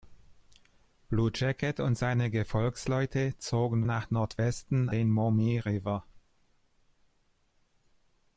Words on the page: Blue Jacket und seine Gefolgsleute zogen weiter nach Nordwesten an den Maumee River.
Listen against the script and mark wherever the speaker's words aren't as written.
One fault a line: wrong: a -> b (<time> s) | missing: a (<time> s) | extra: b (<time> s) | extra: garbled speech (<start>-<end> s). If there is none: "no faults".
missing: weiter (3.9 s)
missing: an (4.9 s)